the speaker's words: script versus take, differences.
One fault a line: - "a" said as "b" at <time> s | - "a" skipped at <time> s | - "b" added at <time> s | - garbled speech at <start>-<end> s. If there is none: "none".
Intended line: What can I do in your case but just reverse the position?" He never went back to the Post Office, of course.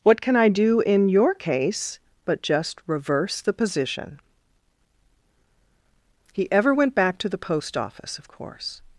- "never" said as "ever" at 6.5 s